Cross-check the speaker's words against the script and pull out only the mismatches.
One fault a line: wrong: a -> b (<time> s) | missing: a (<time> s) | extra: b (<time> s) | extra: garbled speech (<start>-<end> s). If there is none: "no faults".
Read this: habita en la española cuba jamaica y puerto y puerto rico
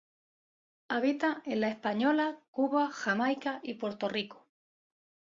missing: y puerto (4.1 s)